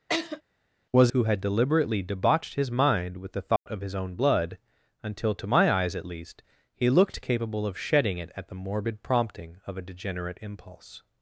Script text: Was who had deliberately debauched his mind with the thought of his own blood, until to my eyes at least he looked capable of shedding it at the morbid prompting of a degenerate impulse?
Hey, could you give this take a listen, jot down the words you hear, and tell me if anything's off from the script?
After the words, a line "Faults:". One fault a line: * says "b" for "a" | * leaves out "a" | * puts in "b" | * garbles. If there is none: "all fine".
Was who had deliberately debauched his mind with the thought of his own blood, until to my eyes at least he looked capable of shedding it at the morbid prompting of a degenerate impulse?
Faults:
all fine